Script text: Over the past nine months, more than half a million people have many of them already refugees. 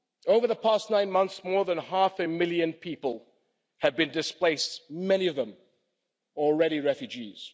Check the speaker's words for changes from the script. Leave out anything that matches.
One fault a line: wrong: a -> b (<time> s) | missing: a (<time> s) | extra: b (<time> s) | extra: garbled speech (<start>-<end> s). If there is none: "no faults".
extra: been displaced (3.9 s)